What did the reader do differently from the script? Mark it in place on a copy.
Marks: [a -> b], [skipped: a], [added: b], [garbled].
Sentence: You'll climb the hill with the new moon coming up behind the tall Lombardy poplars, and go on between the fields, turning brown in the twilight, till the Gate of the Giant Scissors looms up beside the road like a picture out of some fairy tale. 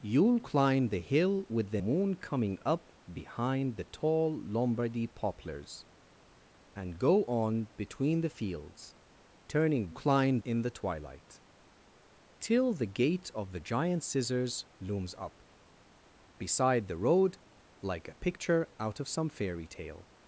You'll climb the hill with the [skipped: new] moon coming up behind the tall Lombardy poplars, and go on between the fields, turning [brown -> climb] in the twilight, till the Gate of the Giant Scissors looms up beside the road like a picture out of some fairy tale.